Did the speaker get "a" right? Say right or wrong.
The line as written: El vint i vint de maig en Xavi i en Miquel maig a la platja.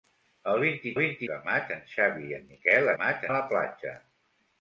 right